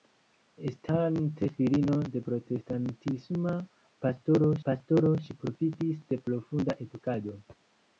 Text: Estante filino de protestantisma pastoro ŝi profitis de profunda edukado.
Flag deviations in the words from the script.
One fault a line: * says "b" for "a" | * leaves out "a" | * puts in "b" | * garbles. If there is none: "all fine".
* puts in "pastoro"